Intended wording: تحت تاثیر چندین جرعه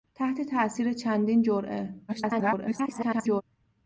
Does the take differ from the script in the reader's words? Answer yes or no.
yes